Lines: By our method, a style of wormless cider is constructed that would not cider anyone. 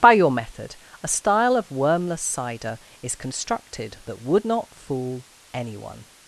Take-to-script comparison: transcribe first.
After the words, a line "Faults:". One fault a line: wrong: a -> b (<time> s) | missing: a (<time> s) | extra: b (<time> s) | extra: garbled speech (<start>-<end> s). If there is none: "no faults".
By your method, a style of wormless cider is constructed that would not fool anyone.
Faults:
wrong: our -> your (0.1 s)
wrong: cider -> fool (4.7 s)